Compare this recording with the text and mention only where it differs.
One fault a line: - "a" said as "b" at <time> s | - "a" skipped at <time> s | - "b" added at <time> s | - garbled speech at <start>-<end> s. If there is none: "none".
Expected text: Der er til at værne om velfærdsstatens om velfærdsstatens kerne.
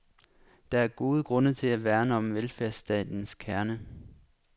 - "gode grunde" added at 0.9 s
- "om velfærdsstatens" skipped at 3.3 s